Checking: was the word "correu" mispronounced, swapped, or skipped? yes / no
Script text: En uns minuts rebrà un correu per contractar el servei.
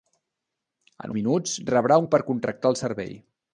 yes